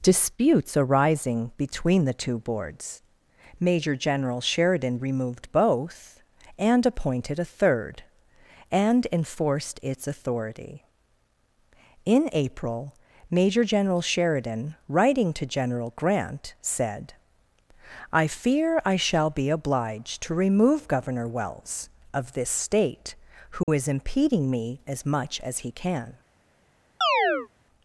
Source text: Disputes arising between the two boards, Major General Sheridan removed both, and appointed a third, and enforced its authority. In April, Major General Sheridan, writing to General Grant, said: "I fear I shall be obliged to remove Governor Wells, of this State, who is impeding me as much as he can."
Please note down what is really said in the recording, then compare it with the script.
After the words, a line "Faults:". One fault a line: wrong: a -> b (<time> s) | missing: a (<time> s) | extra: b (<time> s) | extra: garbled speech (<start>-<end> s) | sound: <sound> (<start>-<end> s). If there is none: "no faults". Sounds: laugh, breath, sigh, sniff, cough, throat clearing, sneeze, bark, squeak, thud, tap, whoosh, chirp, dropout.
Disputes arising between the two boards, Major General Sheridan removed both, and appointed a third, and enforced its authority. In April, Major General Sheridan, writing to General Grant, said: "I fear I shall be obliged to remove Governor Wells, of this State, who is impeding me as much as he can."
Faults:
sound: dropout (23.6-23.7 s)
sound: chirp (27.0-27.5 s)